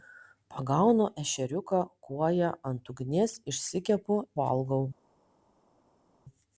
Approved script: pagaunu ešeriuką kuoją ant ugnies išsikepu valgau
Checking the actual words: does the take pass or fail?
pass